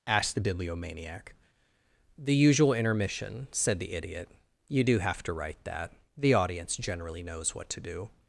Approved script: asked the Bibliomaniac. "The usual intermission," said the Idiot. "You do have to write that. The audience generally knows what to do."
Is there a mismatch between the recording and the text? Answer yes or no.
no